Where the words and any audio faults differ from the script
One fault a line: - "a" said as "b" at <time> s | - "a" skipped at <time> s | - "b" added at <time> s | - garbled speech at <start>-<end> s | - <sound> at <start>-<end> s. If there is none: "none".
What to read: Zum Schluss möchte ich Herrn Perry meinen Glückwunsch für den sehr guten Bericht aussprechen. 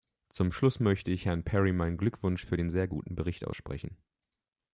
none